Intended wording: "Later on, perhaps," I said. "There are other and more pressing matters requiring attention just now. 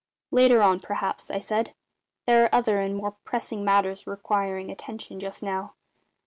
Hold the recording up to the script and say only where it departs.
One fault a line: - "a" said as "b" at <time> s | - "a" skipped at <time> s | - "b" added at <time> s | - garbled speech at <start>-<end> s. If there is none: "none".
none